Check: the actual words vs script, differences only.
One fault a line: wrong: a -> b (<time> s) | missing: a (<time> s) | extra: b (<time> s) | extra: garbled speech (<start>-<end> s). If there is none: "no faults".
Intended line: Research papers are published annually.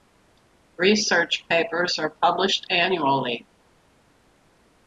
no faults